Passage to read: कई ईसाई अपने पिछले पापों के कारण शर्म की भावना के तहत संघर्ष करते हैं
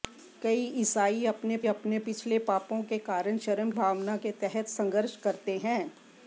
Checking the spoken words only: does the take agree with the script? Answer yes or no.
no